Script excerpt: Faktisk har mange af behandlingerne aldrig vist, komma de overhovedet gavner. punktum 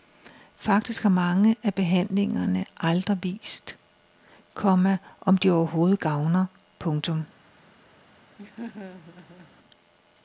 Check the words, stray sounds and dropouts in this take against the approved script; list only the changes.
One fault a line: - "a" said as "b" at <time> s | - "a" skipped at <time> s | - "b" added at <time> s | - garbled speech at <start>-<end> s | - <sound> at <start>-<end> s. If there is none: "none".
- "om" added at 5.2 s
- laugh at 8.4-9.5 s